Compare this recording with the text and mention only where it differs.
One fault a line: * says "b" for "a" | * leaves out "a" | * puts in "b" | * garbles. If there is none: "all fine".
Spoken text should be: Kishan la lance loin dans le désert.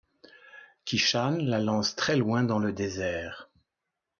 * puts in "très"